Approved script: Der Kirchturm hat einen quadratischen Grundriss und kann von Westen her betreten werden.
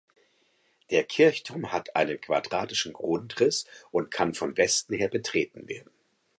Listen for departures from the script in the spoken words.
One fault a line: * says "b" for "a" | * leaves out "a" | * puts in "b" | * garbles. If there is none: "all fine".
all fine